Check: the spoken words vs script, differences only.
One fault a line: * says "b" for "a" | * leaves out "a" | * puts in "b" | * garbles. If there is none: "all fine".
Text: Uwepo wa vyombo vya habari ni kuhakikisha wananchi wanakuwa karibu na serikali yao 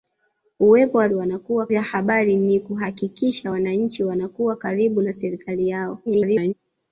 * says "wanakuwa" for "vyombo"
* garbles